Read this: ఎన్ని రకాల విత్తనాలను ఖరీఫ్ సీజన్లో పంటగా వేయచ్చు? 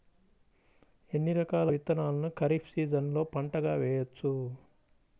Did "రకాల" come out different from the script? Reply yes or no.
no